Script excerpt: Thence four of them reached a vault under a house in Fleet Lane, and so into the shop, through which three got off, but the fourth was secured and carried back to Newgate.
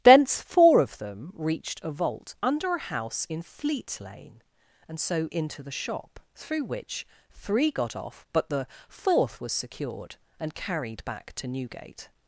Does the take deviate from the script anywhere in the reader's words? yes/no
no